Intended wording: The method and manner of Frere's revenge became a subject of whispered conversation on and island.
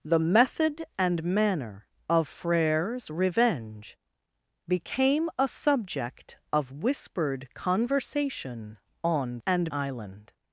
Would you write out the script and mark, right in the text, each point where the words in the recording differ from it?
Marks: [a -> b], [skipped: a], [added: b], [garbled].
The method and manner of Frere's revenge became a subject of whispered conversation on and island.